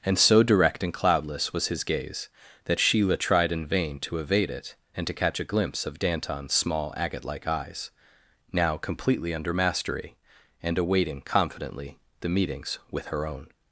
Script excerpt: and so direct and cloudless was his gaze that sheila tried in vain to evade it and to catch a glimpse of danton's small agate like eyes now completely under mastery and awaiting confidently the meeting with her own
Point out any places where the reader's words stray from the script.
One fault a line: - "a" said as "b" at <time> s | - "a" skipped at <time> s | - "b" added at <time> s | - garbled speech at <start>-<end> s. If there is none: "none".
- "meeting" said as "meetings" at 12.3 s